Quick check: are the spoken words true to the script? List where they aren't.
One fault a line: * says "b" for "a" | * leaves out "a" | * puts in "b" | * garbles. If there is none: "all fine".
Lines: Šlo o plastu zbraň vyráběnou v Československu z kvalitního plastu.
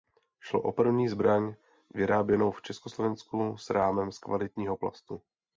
* says "první" for "plastu"
* puts in "s rámem"